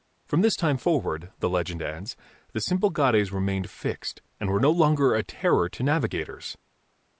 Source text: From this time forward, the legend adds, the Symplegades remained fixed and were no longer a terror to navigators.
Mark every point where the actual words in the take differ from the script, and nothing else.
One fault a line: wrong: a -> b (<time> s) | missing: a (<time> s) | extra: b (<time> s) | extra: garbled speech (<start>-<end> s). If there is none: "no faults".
no faults